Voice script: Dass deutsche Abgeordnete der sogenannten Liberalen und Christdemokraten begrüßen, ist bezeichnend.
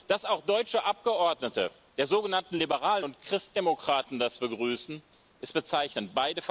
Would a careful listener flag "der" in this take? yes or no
no